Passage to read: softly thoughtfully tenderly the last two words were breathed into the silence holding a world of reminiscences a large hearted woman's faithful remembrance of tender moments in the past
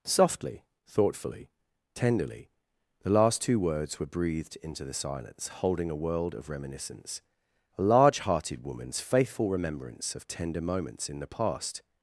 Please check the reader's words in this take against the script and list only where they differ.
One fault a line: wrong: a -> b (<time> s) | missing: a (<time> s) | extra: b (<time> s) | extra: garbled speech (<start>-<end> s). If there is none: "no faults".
wrong: reminiscences -> reminiscence (6.5 s)